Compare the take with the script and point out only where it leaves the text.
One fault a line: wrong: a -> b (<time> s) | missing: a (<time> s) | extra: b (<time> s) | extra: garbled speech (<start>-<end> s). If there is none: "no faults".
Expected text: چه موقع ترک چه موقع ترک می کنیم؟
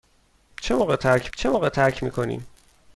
no faults